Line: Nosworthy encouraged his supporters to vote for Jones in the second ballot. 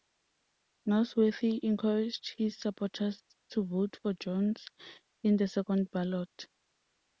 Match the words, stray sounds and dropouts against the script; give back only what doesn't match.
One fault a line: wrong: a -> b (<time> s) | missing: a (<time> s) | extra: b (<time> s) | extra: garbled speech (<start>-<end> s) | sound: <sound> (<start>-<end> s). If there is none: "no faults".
no faults